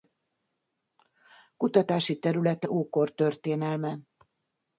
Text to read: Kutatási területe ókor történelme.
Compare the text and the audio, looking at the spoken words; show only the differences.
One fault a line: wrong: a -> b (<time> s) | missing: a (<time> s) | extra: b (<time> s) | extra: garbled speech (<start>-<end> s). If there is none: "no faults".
no faults